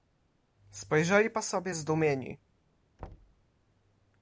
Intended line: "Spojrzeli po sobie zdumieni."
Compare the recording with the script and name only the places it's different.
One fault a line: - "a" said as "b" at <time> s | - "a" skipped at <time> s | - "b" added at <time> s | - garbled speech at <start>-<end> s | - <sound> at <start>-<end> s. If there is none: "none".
- thud at 3.0-3.4 s